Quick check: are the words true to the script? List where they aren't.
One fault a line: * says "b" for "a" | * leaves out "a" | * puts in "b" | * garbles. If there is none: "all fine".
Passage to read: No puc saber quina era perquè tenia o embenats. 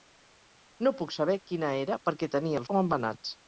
all fine